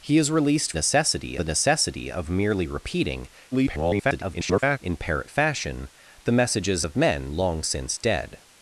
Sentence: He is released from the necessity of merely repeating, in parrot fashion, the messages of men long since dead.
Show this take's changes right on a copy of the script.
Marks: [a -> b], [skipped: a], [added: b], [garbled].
He is released [from -> necessity] the necessity of merely repeating, [garbled] in parrot fashion, the messages of men long since dead.